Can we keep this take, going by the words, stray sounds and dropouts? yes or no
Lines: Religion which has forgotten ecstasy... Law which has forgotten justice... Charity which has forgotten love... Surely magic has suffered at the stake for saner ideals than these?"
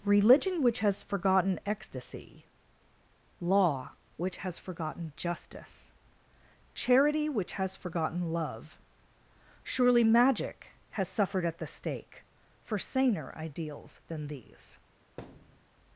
no